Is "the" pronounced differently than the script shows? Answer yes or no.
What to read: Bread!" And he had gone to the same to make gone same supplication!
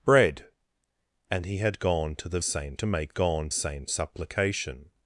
no